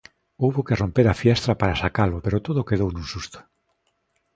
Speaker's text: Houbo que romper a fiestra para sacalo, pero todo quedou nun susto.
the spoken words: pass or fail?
pass